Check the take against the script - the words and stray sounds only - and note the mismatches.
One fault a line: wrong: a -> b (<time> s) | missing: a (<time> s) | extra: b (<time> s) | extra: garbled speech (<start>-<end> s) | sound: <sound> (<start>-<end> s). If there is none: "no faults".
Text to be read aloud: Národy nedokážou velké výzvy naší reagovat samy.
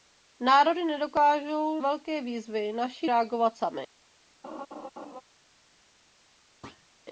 sound: laugh (4.4-5.2 s)
sound: thud (6.6-6.9 s)